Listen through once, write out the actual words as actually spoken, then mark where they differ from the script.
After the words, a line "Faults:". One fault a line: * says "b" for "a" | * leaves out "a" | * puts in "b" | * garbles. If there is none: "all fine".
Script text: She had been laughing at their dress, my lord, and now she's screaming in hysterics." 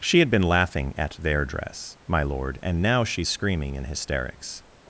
She had been laughing at their dress, my lord, and now she's screaming in hysterics."
Faults:
all fine